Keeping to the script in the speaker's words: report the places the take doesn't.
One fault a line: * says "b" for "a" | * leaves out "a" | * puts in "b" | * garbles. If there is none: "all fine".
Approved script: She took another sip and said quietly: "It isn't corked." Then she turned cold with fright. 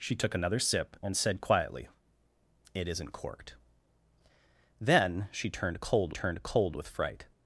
* puts in "turned cold"